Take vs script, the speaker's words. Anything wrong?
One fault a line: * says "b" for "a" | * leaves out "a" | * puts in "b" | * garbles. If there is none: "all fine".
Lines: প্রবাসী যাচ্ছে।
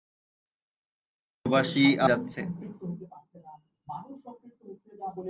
all fine